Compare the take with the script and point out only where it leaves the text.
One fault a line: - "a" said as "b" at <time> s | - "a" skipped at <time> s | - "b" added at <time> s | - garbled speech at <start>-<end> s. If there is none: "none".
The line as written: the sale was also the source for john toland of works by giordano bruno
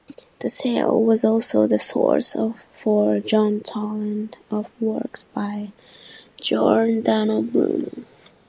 none